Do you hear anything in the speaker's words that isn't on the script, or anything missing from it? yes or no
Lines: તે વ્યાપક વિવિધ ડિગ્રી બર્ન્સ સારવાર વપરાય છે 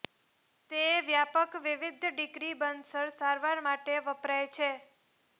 yes